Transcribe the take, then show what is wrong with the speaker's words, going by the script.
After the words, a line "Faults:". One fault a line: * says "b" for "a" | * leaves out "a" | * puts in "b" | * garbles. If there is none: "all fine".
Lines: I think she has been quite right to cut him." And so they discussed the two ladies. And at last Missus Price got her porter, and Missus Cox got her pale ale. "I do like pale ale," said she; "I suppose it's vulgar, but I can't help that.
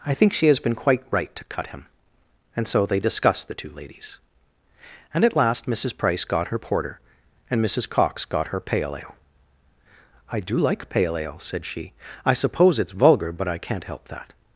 I think she has been quite right to cut him." And so they discussed the two ladies. And at last Missus Price got her porter, and Missus Cox got her pale ale. "I do like pale ale," said she; "I suppose it's vulgar, but I can't help that.
Faults:
all fine